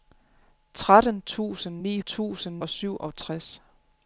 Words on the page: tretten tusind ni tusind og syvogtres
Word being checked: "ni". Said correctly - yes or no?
yes